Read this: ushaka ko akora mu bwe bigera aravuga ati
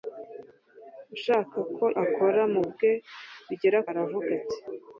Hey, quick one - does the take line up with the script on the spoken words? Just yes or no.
yes